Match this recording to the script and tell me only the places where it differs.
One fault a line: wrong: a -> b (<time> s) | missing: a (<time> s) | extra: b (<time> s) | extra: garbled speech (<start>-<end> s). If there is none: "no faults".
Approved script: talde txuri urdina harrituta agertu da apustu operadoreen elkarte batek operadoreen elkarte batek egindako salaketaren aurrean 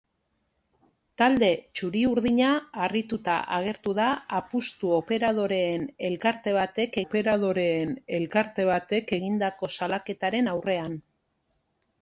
no faults